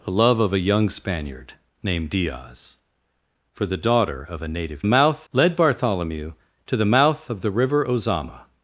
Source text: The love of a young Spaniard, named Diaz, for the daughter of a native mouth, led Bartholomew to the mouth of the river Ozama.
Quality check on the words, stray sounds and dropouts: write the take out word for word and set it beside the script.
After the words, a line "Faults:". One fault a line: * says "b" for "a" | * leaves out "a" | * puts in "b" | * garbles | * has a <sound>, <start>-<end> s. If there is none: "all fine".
The love of a young Spaniard, named Diaz, for the daughter of a native mouth, led Bartholomew to the mouth of the river Ozama.
Faults:
all fine